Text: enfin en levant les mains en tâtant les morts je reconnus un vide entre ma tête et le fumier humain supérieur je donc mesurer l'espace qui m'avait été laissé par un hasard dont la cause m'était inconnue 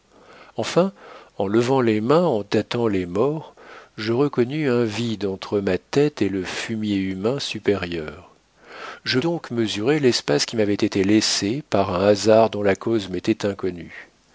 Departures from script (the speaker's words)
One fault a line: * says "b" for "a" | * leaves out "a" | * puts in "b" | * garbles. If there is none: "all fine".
all fine